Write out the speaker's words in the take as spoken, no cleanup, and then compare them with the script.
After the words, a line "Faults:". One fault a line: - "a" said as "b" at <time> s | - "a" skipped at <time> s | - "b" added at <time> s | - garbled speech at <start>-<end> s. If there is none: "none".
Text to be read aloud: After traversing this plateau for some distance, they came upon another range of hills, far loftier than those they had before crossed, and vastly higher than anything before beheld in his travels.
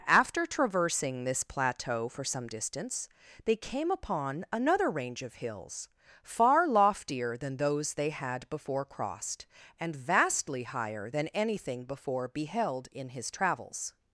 After traversing this plateau for some distance, they came upon another range of hills, far loftier than those they had before crossed, and vastly higher than anything before beheld in his travels.
Faults:
none